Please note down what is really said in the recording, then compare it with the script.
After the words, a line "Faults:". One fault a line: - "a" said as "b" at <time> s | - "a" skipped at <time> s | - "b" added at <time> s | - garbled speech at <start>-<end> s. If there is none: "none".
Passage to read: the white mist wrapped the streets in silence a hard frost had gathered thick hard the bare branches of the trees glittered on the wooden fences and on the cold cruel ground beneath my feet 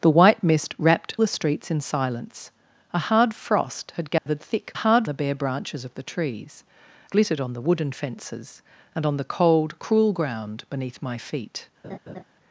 the white mist wrapped the streets in silence a hard frost had gathered thick hard the bare branches of the trees glittered on the wooden fences and on the cold cruel ground beneath my feet
Faults:
none